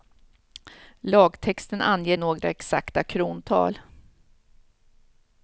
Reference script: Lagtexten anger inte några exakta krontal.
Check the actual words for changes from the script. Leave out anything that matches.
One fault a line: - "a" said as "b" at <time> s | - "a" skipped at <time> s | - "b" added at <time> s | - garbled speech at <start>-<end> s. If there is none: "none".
- "inte" skipped at 2.2 s